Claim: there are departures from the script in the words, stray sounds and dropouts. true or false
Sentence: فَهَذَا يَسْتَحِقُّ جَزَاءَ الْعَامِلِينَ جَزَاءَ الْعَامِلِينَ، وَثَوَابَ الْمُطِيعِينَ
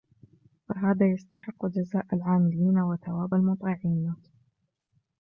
true